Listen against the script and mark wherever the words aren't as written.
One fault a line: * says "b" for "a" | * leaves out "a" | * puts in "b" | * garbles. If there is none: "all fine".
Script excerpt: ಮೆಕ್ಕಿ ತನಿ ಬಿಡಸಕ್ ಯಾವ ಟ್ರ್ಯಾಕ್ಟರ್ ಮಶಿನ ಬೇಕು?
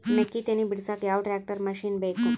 all fine